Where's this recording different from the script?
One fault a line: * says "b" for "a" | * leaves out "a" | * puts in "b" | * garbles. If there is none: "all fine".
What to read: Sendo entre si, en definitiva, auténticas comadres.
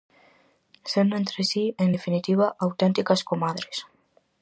all fine